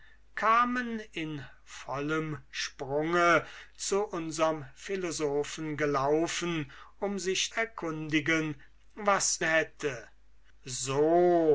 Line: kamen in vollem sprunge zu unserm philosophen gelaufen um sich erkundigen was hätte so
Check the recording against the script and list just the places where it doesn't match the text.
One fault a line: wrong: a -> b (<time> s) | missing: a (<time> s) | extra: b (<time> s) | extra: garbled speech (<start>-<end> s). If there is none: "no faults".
no faults